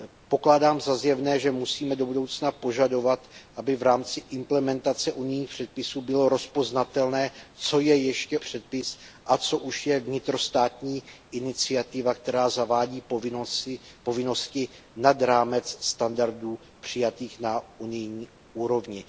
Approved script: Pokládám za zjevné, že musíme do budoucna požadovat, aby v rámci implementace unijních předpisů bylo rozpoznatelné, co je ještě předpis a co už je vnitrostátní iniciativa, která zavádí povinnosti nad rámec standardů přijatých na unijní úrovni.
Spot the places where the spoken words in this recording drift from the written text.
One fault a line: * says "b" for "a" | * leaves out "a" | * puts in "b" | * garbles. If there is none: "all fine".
all fine